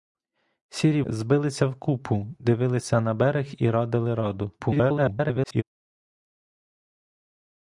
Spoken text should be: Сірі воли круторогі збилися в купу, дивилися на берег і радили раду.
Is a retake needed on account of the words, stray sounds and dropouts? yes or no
yes